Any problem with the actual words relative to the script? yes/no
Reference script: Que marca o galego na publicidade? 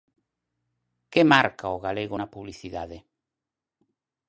no